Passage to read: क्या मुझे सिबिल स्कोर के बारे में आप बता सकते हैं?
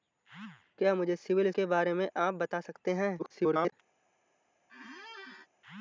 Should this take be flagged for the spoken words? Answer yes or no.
yes